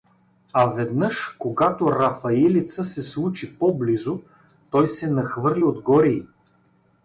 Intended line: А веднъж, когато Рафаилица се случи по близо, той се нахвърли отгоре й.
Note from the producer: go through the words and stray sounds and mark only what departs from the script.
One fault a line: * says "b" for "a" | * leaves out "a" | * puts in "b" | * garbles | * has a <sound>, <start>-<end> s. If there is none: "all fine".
all fine